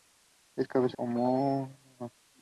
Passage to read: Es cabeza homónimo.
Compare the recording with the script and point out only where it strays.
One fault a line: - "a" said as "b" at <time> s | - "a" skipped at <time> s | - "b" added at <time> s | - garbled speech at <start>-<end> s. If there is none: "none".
none